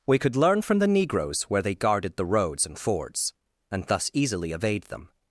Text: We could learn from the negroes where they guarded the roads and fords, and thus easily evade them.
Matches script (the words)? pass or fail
pass